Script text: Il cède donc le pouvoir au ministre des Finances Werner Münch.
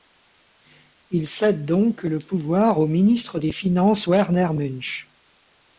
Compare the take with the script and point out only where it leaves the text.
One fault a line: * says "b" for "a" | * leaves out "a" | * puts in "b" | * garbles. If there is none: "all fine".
all fine